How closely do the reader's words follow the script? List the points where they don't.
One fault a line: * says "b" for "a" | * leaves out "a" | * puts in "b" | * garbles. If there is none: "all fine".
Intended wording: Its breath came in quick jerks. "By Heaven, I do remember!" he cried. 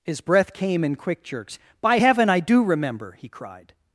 * says "His" for "Its"